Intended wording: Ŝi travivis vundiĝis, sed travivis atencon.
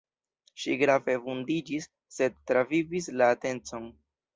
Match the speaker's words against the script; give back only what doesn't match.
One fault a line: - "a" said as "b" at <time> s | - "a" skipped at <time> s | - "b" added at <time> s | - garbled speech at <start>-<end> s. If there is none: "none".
- "travivis" said as "grave" at 0.8 s
- "la" added at 3.2 s